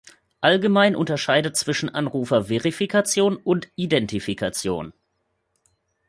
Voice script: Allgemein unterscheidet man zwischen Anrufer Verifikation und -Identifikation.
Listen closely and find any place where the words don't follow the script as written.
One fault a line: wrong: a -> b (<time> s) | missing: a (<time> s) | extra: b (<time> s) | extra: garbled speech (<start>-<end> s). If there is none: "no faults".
missing: man (1.6 s)